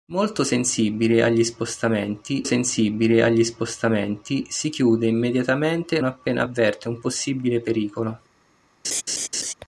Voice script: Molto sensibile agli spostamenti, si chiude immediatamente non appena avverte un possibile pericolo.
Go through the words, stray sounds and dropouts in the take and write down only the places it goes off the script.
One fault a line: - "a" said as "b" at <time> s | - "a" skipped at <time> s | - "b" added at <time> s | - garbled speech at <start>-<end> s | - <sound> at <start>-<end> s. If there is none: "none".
- "sensibile agli spostamenti" added at 2.4 s
- "non" skipped at 6.0 s
- laugh at 8.8-9.5 s